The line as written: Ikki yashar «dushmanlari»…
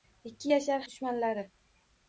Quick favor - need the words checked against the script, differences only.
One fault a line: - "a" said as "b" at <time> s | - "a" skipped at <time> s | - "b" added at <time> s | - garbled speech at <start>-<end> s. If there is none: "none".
none